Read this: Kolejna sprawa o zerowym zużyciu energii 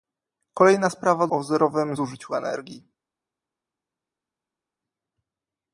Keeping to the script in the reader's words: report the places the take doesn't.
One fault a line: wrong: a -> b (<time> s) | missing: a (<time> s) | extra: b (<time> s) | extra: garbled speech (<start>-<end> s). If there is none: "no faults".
no faults